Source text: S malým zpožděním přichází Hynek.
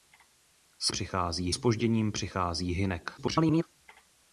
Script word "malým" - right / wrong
wrong